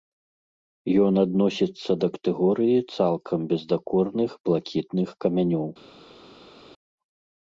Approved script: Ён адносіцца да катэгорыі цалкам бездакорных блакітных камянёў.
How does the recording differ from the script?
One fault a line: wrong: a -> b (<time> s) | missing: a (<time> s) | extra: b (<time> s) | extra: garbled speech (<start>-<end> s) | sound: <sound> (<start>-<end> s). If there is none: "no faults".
no faults